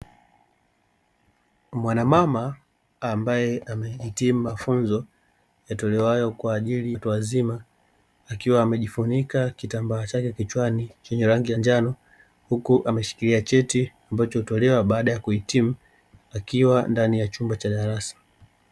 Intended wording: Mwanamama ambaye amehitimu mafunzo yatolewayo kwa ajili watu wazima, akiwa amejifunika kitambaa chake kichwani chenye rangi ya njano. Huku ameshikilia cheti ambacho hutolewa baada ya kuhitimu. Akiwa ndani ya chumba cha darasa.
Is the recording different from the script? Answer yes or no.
no